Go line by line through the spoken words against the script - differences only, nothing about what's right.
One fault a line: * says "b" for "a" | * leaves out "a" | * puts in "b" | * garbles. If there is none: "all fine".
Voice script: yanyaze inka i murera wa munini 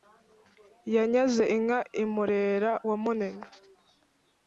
all fine